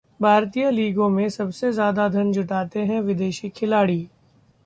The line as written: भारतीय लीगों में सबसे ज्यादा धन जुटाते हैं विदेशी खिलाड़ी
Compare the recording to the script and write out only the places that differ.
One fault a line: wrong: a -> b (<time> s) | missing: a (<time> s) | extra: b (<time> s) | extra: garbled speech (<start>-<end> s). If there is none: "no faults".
no faults